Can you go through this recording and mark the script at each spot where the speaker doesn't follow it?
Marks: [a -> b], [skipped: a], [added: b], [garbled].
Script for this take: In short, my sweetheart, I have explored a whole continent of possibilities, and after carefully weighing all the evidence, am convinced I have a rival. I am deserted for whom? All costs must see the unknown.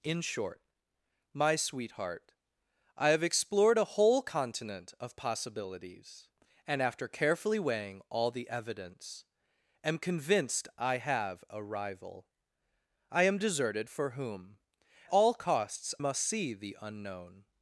In short, my sweetheart, I have explored a whole continent of possibilities, and after carefully weighing all the evidence, am convinced I have a rival. I am deserted for whom? All costs must see the unknown.